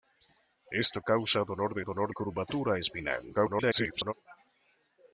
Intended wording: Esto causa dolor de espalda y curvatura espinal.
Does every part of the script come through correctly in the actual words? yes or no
no